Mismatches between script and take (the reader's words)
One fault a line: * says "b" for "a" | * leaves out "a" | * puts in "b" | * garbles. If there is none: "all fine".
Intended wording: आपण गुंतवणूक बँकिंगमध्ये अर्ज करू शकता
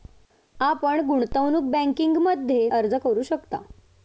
all fine